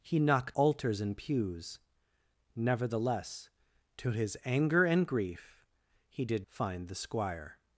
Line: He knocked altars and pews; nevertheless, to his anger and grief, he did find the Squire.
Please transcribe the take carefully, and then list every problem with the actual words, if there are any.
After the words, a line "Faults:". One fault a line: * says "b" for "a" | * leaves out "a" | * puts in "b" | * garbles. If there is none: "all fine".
He knocked altars and pews; nevertheless, to his anger and grief, he did find the Squire.
Faults:
all fine